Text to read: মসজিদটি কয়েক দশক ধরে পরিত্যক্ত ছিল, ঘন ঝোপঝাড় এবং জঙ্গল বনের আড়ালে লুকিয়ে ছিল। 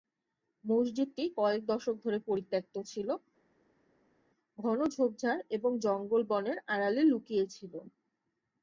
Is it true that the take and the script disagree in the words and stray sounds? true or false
false